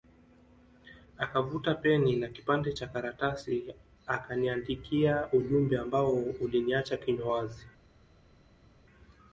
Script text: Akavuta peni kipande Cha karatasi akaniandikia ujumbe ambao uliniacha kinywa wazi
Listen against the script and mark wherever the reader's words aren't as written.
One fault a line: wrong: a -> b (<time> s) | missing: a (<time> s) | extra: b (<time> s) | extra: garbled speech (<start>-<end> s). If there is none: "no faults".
extra: na (2.1 s)